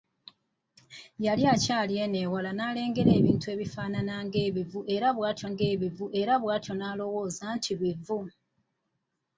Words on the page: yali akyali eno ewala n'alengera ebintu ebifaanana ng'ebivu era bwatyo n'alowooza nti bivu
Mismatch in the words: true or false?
true